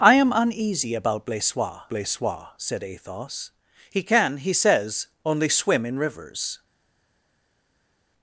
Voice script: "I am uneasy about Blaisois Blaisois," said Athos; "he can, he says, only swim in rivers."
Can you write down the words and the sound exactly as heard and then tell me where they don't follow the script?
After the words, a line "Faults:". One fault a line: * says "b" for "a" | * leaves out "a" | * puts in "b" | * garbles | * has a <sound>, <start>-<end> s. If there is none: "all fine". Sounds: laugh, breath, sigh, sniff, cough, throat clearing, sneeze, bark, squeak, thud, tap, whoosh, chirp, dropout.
"I am uneasy about Blaisois Blaisois," said Athos; "he can, he says, only swim in rivers."
Faults:
all fine